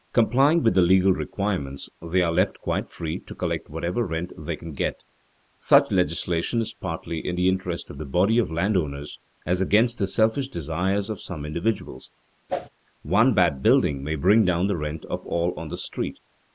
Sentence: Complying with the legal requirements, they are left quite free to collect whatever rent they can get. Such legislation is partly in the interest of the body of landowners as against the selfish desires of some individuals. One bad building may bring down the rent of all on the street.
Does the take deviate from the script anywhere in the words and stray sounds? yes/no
yes